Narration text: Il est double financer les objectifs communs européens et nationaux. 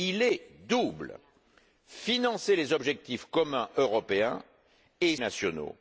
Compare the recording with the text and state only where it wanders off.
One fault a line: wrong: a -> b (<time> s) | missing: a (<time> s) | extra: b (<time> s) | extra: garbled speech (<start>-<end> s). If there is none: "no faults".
no faults